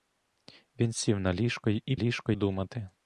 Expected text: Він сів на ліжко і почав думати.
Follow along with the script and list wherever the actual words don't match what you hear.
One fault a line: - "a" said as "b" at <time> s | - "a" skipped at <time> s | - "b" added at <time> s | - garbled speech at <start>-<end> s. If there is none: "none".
- "почав" said as "ліжко" at 2.0 s